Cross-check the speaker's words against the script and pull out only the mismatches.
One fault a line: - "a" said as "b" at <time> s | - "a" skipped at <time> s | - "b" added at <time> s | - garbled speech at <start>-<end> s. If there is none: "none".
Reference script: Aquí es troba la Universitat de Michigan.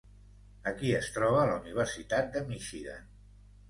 none